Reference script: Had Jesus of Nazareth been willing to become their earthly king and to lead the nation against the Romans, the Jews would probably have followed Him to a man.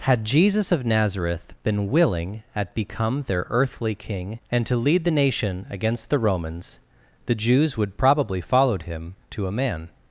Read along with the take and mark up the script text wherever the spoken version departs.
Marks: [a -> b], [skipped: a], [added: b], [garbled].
Had Jesus of Nazareth been willing [to -> at] become their earthly king and to lead the nation against the Romans, the Jews would probably [skipped: have] followed Him to a man.